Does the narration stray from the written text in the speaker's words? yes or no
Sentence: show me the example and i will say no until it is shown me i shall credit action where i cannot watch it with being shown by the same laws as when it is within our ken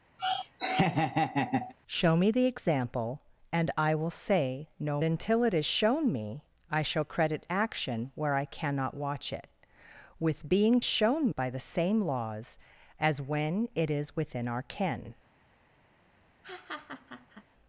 no